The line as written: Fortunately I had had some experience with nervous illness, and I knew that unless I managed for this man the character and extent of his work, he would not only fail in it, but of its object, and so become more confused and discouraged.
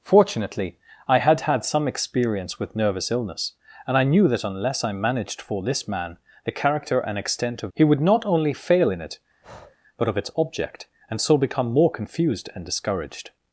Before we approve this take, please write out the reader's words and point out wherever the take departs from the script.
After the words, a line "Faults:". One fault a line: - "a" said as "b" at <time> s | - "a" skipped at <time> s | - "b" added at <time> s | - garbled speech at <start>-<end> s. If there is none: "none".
Fortunately I had had some experience with nervous illness, and I knew that unless I managed for this man the character and extent of he would not only fail in it, but of its object, and so become more confused and discouraged.
Faults:
- "his work" skipped at 7.7 s